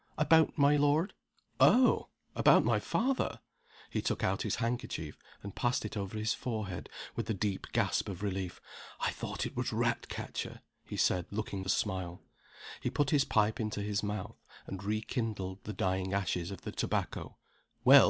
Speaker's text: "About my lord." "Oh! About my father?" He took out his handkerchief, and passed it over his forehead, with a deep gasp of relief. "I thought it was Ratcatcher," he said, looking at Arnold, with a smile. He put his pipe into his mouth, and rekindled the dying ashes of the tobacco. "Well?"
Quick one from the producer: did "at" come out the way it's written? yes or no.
no